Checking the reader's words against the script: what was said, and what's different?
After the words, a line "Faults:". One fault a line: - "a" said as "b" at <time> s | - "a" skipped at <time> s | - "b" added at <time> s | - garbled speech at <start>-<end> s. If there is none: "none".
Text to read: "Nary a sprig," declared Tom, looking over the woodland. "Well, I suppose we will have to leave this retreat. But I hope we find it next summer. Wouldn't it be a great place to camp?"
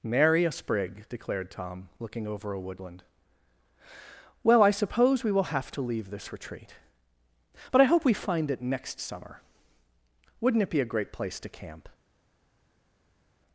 "Nary a sprig," declared Tom, looking over a woodland. "Well, I suppose we will have to leave this retreat. But I hope we find it next summer. Wouldn't it be a great place to camp?"
Faults:
- "the" said as "a" at 2.5 s